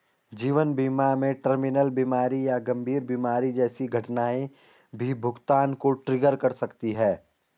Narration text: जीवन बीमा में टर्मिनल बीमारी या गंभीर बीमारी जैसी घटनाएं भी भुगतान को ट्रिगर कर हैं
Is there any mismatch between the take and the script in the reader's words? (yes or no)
yes